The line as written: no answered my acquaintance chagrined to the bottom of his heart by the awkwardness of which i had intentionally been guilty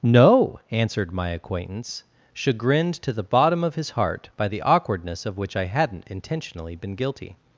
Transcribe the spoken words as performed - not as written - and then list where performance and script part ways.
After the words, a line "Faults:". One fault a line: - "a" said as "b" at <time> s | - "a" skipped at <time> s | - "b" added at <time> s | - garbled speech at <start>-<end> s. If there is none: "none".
no answered my acquaintance chagrined to the bottom of his heart by the awkwardness of which i hadn't intentionally been guilty
Faults:
- "had" said as "hadn't" at 5.6 s